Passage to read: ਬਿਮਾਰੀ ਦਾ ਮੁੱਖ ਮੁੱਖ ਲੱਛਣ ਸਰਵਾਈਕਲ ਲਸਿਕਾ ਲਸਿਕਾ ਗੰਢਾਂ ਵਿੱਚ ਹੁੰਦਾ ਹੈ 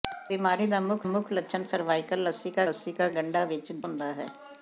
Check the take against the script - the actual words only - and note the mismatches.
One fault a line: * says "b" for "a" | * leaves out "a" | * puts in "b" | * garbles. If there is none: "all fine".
all fine